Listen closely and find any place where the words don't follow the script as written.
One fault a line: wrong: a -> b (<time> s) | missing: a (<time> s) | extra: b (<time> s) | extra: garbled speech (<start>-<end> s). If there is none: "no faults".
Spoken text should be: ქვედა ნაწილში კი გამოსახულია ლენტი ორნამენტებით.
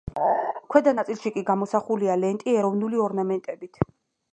extra: ეროვნული (2.6 s)